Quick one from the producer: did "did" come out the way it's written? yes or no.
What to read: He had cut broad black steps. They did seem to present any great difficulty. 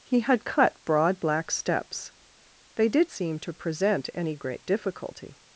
yes